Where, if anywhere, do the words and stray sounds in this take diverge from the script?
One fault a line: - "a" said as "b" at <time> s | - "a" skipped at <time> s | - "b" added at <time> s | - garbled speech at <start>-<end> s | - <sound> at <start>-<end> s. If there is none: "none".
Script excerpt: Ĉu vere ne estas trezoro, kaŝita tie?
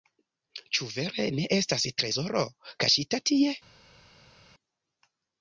none